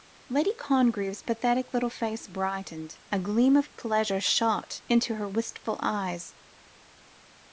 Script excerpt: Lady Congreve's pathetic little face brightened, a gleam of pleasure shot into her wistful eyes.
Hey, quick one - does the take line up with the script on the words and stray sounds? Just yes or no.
yes